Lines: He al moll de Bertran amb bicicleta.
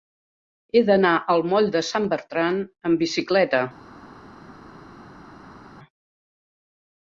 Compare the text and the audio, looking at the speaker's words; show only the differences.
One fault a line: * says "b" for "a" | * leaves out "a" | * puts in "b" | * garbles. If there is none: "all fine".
* puts in "d'anar"
* puts in "Sant"